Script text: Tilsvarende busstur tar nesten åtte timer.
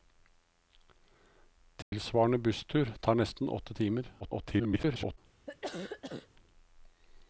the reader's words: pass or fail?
fail